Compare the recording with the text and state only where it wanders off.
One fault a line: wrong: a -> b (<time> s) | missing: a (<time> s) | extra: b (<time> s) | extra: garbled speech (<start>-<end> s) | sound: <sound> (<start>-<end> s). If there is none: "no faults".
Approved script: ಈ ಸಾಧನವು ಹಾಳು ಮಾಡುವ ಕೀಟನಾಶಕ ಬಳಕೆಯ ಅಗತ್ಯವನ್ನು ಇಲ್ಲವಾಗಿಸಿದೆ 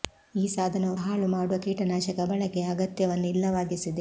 no faults